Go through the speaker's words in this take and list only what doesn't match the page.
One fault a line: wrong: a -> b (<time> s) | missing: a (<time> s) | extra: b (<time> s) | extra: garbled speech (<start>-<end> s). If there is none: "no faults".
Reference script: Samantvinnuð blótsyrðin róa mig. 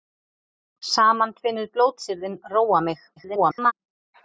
extra: garbled speech (3.2-3.7 s)